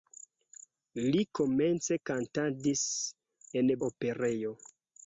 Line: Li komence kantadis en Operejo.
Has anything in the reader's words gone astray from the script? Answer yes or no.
no